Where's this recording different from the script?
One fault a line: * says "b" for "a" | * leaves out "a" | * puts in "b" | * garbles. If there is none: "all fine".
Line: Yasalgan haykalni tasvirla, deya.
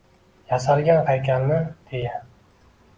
* leaves out "tasvirla"